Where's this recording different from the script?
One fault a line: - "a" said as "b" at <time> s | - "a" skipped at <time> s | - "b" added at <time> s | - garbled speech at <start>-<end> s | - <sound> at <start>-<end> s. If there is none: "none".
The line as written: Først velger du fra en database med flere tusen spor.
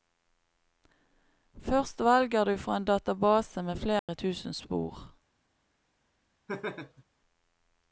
- dropout at 4.0-4.1 s
- laugh at 6.5-7.0 s